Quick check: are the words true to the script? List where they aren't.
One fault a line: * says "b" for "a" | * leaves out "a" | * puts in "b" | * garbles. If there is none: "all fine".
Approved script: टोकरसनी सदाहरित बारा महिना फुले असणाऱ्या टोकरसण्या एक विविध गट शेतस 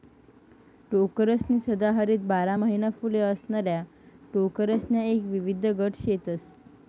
all fine